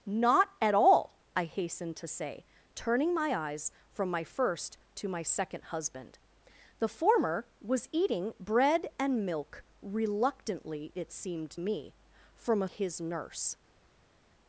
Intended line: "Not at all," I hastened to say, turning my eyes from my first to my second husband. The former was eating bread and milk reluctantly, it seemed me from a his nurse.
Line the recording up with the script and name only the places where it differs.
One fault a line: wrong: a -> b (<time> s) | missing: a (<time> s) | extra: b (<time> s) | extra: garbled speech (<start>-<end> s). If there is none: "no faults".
no faults